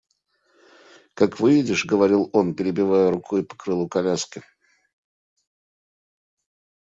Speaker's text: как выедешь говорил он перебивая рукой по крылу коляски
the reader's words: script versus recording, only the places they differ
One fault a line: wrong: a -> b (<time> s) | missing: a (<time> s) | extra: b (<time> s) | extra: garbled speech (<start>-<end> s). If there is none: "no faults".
no faults